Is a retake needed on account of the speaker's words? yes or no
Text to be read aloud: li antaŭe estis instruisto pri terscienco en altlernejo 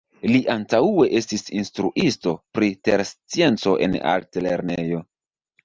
no